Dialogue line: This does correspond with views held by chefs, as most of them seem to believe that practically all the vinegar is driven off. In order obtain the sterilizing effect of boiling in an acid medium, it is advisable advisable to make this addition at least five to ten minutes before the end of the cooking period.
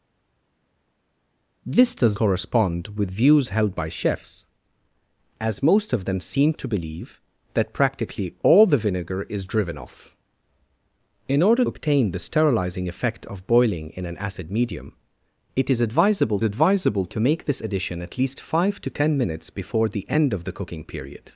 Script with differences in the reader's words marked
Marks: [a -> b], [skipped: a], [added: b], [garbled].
This does correspond with views held by chefs, as most of them seem to believe that practically all the vinegar is driven off. In order obtain the sterilizing effect of boiling in an acid medium, it is advisable advisable to make this addition at least five to ten minutes before the end of the cooking period.